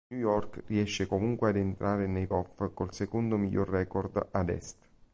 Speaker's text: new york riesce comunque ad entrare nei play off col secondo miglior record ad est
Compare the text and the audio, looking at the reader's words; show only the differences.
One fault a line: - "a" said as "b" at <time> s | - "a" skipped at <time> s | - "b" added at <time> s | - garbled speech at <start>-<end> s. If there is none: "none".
- "play" skipped at 2.3 s